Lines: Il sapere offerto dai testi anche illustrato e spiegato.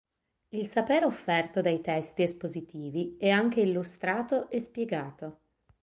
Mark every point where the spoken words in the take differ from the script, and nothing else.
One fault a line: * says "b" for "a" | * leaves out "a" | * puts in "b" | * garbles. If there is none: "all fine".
* puts in "espositivi è"